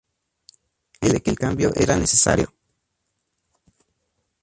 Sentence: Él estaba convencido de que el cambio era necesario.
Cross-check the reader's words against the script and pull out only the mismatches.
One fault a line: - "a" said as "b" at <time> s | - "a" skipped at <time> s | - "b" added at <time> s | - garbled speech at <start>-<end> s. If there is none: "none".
- "estaba convencido" skipped at 1.1 s